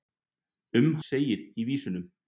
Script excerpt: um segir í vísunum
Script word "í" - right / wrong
right